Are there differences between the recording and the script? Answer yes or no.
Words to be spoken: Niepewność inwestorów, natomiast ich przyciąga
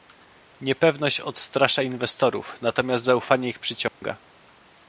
yes